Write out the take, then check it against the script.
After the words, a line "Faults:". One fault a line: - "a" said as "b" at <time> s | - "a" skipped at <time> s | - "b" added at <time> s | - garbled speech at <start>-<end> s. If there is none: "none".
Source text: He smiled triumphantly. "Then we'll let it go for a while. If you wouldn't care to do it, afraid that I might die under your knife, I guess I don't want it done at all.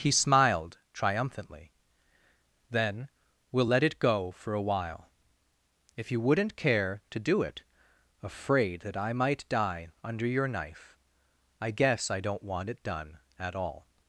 He smiled triumphantly. "Then we'll let it go for a while. If you wouldn't care to do it, afraid that I might die under your knife, I guess I don't want it done at all.
Faults:
none